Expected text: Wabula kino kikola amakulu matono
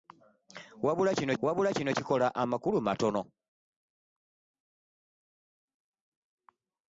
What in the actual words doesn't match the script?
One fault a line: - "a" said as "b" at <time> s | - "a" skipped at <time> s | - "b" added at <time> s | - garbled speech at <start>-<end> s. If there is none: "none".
- "wabula kino" added at 1.4 s